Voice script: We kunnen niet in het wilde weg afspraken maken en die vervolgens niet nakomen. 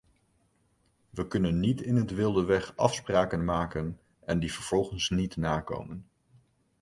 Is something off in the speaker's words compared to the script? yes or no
no